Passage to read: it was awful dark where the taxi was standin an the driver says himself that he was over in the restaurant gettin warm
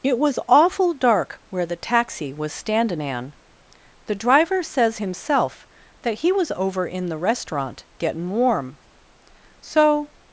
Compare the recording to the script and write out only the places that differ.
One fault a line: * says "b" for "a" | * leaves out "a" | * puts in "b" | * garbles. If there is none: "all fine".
* puts in "so"